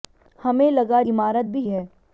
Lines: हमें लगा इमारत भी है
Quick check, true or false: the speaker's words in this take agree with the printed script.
true